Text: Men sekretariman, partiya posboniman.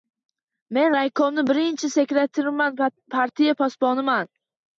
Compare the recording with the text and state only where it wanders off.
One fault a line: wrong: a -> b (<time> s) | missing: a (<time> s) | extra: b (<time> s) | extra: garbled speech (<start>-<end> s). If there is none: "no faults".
extra: raykomni birinchi (0.9 s)